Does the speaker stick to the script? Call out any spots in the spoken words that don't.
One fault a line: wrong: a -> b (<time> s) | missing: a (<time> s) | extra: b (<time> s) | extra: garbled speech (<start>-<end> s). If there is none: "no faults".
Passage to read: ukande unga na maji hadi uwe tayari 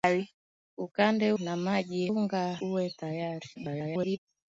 missing: unga (1.3 s)
wrong: hadi -> unga (2.1 s)
extra: garbled speech (3.5-4.2 s)